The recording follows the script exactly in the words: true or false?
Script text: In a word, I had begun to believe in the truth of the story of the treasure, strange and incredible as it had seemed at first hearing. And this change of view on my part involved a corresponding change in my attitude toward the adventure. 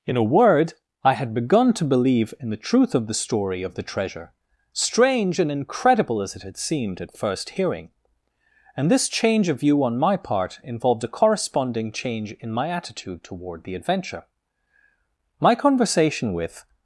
false